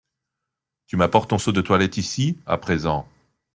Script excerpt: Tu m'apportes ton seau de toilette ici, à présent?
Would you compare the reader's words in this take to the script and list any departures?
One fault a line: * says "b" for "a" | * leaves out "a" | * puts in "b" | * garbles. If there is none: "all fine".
all fine